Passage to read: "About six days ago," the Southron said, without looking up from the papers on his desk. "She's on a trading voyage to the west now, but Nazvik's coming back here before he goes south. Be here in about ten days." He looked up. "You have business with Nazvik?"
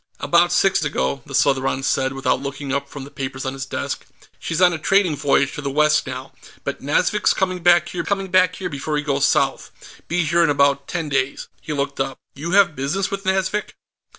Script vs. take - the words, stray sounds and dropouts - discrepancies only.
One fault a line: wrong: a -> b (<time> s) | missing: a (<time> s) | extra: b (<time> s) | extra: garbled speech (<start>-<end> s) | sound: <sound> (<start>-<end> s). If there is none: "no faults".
missing: days (0.8 s)
extra: coming back here (8.0 s)